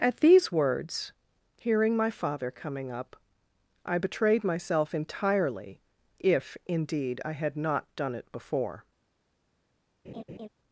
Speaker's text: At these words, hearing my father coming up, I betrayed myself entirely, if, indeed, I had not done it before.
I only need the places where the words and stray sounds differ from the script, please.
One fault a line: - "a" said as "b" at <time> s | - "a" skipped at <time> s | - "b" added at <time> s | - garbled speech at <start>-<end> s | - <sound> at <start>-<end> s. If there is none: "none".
- laugh at 10.0-10.5 s